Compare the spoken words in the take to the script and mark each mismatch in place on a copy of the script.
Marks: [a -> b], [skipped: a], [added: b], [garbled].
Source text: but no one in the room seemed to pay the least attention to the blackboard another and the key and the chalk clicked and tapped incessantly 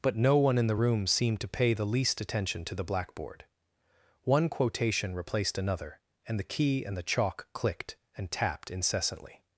but no one in the room seemed to pay the least attention to the blackboard [added: one quotation replaced] another and the key and the chalk clicked and tapped incessantly